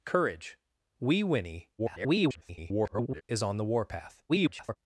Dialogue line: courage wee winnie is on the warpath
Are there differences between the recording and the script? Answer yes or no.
yes